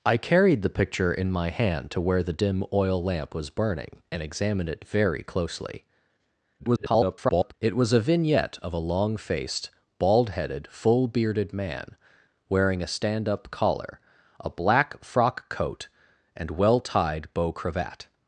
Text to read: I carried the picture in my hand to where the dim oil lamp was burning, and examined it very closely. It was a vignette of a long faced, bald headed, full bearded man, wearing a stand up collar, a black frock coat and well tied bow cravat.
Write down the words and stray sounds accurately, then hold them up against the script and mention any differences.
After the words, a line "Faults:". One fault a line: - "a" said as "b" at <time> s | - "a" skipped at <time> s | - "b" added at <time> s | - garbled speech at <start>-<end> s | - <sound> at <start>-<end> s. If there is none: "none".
I carried the picture in my hand to where the dim oil lamp was burning, and examined it very closely. [garbled] It was a vignette of a long faced, bald headed, full bearded man, wearing a stand up collar, a black frock coat and well tied bow cravat.
Faults:
- garbled speech at 6.6-7.5 s